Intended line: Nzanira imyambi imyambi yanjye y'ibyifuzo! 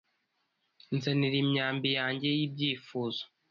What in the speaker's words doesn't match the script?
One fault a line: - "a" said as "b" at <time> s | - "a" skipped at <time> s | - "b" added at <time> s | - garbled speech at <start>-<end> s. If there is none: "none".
- "imyambi" skipped at 1.9 s